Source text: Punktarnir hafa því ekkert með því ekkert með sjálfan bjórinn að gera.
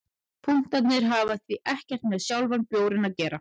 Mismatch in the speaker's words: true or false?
true